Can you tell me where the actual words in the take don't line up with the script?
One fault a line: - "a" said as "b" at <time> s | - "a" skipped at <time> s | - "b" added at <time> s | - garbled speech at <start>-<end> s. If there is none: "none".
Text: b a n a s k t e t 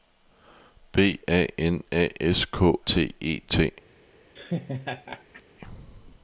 none